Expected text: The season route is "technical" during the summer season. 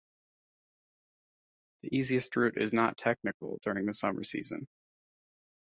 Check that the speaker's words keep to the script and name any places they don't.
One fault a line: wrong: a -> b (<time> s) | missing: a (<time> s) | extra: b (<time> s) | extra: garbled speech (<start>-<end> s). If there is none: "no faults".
wrong: season -> easiest (1.9 s)
extra: not (2.7 s)